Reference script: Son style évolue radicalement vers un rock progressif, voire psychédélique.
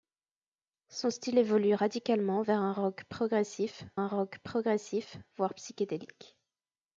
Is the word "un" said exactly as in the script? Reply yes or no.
yes